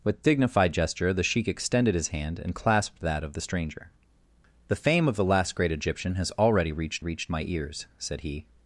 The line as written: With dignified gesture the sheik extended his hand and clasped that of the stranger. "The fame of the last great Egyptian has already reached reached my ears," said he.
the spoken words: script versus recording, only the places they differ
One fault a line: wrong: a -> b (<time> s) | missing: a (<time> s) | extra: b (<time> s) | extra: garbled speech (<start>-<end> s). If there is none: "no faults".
no faults